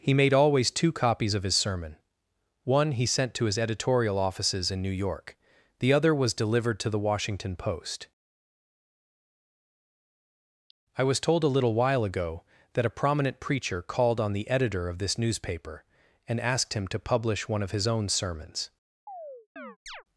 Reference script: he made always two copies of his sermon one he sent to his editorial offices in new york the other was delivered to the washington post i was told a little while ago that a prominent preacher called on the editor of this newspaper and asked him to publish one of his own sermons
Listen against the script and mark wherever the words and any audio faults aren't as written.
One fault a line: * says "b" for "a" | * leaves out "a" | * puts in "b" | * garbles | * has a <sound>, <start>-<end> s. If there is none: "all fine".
* has a chirp, 19.1-20.0 s